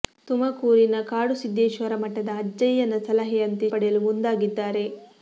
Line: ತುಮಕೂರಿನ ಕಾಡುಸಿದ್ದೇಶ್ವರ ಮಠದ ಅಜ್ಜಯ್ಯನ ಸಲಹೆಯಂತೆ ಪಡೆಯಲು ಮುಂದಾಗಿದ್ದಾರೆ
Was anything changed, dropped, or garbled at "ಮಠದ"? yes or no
no